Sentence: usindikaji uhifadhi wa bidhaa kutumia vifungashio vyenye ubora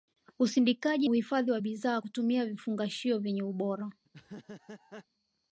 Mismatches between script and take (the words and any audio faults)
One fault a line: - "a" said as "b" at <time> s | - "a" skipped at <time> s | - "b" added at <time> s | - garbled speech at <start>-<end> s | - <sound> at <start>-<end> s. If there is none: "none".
- laugh at 4.1-5.1 s